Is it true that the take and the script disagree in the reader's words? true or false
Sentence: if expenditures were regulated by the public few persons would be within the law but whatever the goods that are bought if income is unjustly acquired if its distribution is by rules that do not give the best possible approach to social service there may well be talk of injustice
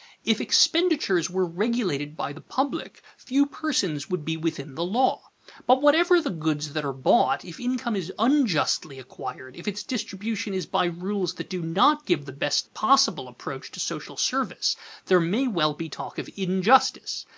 false